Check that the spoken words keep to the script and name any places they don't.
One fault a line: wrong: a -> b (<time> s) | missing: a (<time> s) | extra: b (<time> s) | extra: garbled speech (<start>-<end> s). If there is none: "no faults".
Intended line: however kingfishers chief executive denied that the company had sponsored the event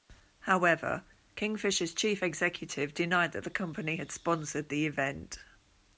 no faults